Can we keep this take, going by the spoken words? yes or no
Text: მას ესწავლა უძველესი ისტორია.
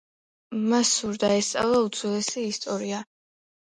no